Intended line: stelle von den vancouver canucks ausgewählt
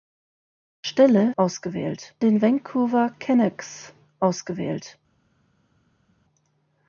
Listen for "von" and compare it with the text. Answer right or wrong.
wrong